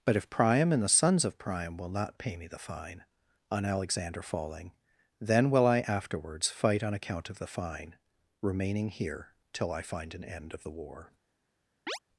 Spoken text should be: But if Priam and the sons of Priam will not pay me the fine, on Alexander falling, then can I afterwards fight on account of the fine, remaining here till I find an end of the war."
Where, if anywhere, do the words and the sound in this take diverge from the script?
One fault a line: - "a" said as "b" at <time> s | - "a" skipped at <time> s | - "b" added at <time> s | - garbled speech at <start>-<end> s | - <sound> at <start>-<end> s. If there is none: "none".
- "can" said as "will" at 5.5 s
- chirp at 11.9-12.0 s